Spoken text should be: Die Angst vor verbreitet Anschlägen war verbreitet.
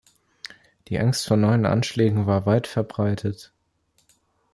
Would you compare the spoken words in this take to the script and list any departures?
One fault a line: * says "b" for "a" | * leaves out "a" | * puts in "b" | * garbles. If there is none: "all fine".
* says "neuen" for "verbreitet"
* puts in "weit"